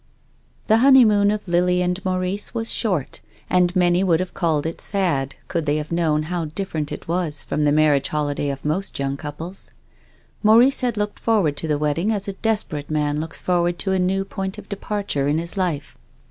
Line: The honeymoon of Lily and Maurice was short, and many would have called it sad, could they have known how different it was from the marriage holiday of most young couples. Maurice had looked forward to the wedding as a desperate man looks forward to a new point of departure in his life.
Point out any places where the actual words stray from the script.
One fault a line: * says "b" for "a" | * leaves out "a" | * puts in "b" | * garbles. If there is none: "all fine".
all fine